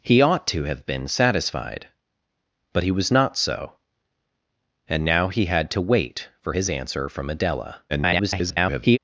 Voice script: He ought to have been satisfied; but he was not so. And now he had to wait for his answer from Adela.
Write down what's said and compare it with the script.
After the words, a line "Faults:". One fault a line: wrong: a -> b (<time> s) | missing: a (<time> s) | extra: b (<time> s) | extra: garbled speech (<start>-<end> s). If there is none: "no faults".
He ought to have been satisfied; but he was not so. And now he had to wait for his answer from Adela. [garbled]
Faults:
extra: garbled speech (7.9-9.0 s)